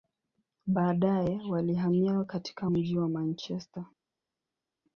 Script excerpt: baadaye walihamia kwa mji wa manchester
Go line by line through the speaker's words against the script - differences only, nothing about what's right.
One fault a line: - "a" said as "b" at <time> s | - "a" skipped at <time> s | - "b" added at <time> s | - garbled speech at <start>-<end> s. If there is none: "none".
- "kwa" said as "katika" at 2.2 s